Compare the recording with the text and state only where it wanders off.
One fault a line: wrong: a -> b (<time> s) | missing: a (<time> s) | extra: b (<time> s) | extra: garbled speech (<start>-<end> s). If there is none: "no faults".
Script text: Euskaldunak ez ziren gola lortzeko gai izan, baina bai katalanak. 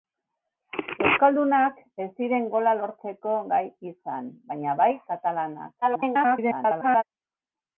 extra: garbled speech (5.8-7.0 s)